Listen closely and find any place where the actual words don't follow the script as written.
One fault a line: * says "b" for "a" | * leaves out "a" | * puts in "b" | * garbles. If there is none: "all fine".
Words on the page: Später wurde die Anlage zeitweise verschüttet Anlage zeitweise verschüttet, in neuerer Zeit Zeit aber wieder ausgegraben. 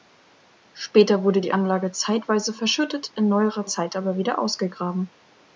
* leaves out "Anlage zeitweise verschüttet"
* leaves out "Zeit"